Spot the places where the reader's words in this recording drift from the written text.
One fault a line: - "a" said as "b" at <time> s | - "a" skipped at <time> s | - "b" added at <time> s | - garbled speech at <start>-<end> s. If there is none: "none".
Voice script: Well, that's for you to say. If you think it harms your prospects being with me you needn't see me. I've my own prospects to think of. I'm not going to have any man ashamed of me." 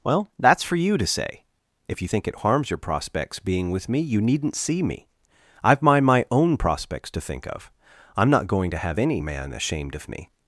- "my" added at 6.0 s